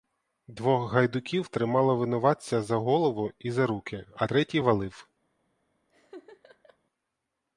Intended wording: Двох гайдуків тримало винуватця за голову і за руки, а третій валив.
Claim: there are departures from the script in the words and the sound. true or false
true